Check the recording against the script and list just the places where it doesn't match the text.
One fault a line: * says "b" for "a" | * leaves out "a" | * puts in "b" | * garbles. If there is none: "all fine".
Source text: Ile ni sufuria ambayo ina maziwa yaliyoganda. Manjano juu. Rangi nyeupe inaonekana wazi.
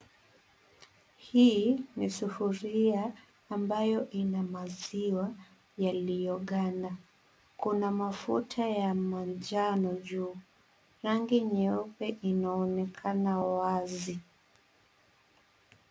* says "Hii" for "Ile"
* puts in "Kuna mafuta ya"